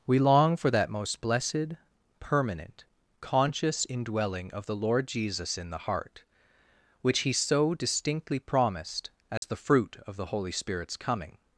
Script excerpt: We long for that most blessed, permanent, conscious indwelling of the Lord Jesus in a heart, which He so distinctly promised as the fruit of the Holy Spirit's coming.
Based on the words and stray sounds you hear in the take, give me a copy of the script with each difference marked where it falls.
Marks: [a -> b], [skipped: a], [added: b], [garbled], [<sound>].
We long for that most blessed, permanent, conscious indwelling of the Lord Jesus in [a -> the] heart, which He so distinctly promised as [dropout] the fruit of the Holy Spirit's coming.